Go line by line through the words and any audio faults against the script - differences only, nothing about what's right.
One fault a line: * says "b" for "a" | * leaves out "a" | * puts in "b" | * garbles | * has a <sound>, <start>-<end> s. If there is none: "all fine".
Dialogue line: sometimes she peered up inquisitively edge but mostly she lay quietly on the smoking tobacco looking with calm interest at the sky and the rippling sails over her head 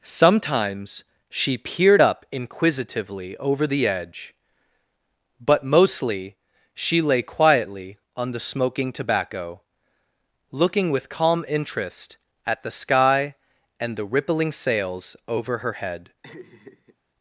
* puts in "over the"
* has a laugh, 16.2-17.0 s